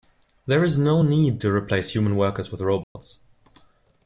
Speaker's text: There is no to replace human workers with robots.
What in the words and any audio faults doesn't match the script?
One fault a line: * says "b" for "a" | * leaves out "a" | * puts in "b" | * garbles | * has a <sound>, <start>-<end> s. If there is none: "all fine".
* puts in "need"
* has a dropout, 2.8-3.0 s